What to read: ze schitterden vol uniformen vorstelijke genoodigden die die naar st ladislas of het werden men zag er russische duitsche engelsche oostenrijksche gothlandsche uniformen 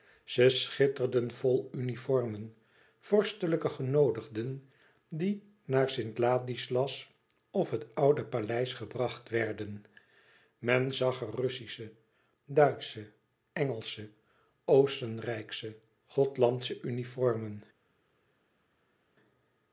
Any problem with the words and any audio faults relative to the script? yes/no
yes